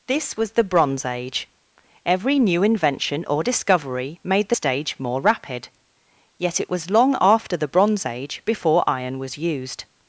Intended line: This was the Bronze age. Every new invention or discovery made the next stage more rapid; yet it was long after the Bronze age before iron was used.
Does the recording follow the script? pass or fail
fail